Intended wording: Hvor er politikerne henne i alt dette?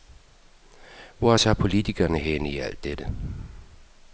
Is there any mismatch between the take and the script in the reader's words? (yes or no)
yes